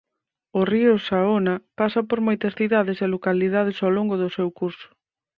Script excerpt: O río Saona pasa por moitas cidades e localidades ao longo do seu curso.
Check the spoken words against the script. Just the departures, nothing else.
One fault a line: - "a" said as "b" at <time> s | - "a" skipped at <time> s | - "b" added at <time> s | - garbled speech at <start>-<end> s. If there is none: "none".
none